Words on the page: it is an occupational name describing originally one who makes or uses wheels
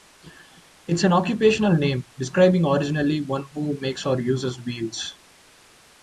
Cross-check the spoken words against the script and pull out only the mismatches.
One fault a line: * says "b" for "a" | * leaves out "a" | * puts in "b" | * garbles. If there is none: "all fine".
all fine